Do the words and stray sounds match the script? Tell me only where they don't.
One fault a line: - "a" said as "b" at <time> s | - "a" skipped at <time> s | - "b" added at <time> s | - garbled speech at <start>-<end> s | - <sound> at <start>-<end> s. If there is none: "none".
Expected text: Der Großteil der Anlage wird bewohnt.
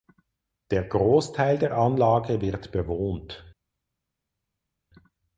none